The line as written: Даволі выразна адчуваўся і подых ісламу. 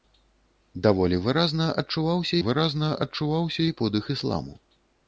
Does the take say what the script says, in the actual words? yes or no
no